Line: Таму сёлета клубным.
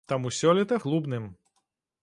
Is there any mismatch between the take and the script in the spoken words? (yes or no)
no